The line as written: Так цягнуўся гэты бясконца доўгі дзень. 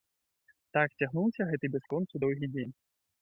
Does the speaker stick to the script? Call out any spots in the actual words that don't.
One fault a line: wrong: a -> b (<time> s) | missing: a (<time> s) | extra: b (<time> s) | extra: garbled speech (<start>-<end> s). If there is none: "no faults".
no faults